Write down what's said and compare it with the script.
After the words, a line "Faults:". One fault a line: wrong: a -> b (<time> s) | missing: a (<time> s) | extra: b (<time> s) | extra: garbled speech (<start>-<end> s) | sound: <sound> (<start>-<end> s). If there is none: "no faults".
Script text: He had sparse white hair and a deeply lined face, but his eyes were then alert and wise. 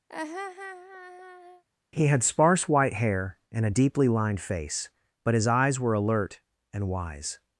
He had sparse white hair and a deeply lined face, but his eyes were alert and wise.
Faults:
sound: laugh (0.1-1.6 s)
missing: then (5.9 s)